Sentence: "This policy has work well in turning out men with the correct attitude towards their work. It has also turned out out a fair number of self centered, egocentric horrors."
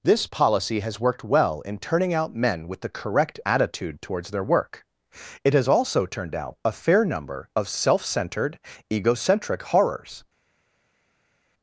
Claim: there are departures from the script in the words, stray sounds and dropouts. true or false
true